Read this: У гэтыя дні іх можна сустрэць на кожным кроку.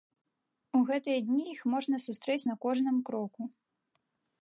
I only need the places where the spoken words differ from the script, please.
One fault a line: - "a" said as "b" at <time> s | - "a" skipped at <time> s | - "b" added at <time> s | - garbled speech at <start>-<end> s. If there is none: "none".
none